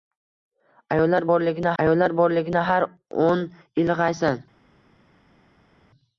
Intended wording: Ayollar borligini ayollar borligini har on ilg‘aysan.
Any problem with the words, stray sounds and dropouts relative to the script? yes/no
no